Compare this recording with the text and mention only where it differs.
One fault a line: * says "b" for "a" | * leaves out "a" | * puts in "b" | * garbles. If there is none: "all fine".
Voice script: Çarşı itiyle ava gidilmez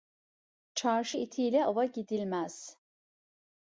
all fine